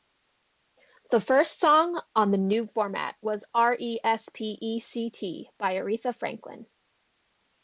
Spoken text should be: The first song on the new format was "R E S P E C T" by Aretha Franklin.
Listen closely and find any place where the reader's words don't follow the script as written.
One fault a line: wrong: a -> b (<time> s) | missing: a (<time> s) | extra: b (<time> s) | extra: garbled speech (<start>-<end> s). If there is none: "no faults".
no faults